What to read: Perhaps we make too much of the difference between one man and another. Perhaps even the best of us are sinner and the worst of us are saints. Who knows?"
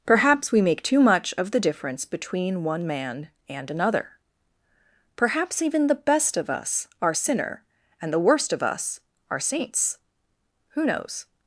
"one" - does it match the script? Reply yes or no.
yes